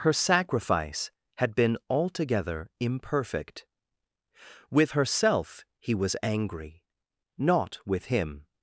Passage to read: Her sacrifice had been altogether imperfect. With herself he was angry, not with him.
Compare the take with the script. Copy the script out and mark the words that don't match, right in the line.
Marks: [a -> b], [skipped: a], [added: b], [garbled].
Her sacrifice had been altogether imperfect. With herself he was angry, not with him.